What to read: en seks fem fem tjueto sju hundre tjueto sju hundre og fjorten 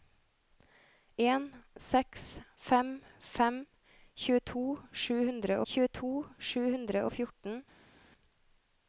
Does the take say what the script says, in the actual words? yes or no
yes